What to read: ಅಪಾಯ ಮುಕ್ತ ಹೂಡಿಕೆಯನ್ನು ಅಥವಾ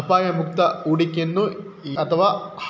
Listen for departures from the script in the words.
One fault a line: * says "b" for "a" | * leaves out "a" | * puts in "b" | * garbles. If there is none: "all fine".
all fine